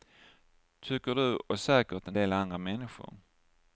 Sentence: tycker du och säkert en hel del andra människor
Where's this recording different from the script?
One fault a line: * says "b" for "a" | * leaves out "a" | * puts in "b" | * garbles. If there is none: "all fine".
* leaves out "hel"